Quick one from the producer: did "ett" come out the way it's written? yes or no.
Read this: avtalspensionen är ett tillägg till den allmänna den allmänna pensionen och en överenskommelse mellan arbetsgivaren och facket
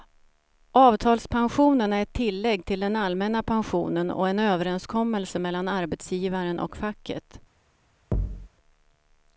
yes